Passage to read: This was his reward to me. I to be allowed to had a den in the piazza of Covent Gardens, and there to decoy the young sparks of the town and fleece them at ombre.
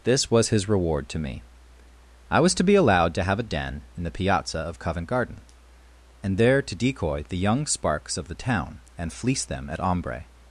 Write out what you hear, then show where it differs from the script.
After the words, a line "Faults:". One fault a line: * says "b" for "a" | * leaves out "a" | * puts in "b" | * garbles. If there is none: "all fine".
This was his reward to me. I was to be allowed to have a den in the piazza of Covent Garden, and there to decoy the young sparks of the town and fleece them at ombre.
Faults:
* puts in "was"
* says "have" for "had"
* says "Garden" for "Gardens"